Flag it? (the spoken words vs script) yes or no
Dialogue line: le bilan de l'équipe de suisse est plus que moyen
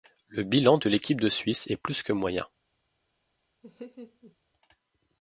no